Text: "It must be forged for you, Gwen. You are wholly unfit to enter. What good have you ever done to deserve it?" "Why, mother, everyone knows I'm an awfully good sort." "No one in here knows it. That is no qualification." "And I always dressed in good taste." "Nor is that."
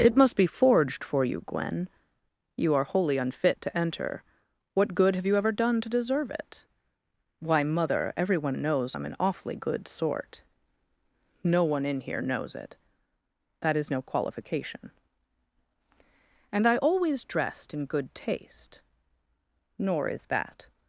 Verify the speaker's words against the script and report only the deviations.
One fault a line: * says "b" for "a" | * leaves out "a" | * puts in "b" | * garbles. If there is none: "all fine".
all fine